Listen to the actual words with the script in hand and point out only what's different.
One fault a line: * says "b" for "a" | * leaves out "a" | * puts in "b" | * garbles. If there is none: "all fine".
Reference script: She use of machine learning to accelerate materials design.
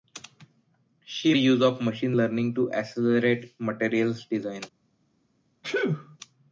all fine